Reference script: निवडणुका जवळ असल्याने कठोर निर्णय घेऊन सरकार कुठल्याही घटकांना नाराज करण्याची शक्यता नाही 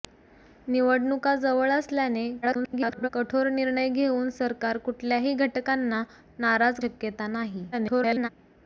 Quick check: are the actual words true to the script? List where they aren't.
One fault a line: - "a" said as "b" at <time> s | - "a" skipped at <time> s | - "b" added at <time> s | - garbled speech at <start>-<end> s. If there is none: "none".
- garbled speech at 2.4-3.1 s
- "करण्याची" skipped at 6.8 s
- garbled speech at 7.7-8.3 s